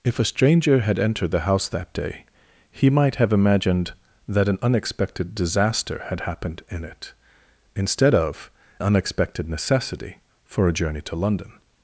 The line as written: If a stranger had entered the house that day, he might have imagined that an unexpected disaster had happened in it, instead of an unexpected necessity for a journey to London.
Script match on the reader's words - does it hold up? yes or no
no